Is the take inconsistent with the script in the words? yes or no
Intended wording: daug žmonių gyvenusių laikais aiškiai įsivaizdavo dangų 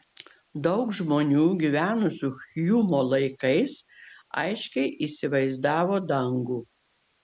yes